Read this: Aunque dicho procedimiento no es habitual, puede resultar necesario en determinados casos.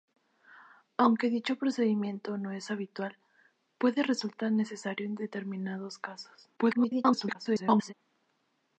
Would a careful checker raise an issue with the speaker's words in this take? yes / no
yes